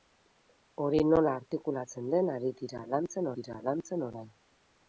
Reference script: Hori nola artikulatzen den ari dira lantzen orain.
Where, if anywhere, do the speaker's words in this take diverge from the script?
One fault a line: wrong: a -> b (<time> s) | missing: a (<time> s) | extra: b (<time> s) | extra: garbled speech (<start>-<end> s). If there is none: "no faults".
extra: dira lantzen (3.4 s)